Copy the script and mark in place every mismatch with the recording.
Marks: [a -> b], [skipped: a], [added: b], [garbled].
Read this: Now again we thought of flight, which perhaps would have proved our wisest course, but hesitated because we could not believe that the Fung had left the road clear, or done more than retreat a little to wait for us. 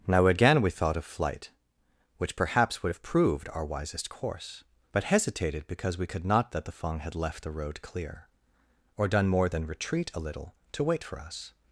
Now again we thought of flight, which perhaps would have proved our wisest course, but hesitated because we could not [skipped: believe] that the Fung had left the road clear, or done more than retreat a little to wait for us.